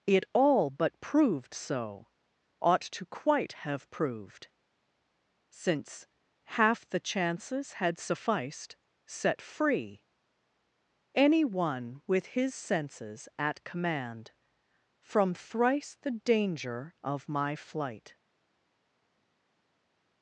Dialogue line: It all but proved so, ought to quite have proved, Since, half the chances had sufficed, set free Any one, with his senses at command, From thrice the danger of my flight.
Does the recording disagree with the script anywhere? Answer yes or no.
no